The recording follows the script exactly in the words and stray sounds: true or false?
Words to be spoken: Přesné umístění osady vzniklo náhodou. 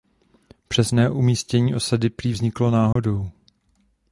false